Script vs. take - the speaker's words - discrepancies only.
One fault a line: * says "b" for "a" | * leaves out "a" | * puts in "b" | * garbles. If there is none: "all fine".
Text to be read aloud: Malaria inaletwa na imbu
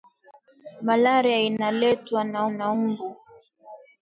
* puts in "na"